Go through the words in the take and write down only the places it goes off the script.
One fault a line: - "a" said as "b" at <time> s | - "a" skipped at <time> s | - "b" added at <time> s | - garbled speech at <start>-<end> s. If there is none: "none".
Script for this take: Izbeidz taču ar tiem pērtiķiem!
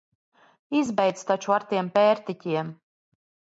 none